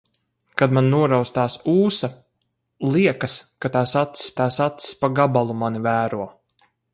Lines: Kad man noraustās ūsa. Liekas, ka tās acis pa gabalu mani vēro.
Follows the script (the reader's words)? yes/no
no